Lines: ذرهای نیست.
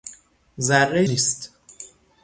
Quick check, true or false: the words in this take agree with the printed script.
true